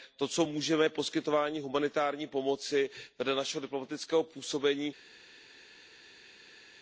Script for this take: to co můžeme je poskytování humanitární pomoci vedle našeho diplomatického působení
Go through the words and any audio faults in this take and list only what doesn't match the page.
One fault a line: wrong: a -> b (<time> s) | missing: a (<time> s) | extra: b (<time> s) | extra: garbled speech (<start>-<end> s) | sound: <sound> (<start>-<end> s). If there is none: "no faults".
no faults